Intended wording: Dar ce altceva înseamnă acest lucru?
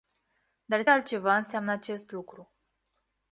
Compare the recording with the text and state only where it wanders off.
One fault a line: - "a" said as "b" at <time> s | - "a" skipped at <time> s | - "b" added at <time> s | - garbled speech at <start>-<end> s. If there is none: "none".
- "ce" skipped at 0.8 s